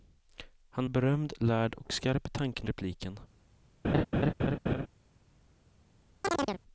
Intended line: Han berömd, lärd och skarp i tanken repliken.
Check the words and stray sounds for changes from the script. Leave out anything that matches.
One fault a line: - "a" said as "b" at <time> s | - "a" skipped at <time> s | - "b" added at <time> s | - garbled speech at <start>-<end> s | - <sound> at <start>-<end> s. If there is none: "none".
- laugh at 3.8-4.9 s
- chirp at 6.2-6.6 s